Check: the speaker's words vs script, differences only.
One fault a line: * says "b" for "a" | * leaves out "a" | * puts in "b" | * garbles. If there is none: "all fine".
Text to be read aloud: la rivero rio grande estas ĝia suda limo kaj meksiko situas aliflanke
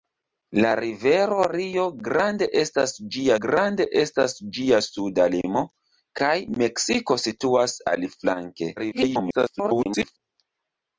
* puts in "grande estas ĝia"
* garbles